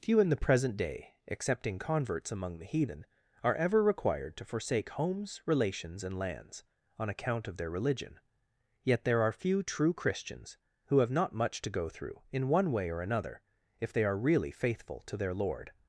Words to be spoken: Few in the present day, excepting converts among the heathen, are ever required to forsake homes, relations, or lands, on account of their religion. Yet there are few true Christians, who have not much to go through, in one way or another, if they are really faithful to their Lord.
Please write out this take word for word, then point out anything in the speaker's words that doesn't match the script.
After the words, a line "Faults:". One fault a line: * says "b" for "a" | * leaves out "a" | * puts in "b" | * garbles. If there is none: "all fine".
Few in the present day, excepting converts among the heathen, are ever required to forsake homes, relations, and lands, on account of their religion. Yet there are few true Christians, who have not much to go through, in one way or another, if they are really faithful to their Lord.
Faults:
* says "and" for "or"